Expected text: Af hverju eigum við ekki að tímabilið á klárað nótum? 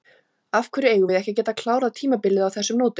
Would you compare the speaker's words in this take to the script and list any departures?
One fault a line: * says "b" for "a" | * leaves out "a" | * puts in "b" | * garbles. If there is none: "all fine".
* puts in "geta klárað"
* says "þessum" for "klárað"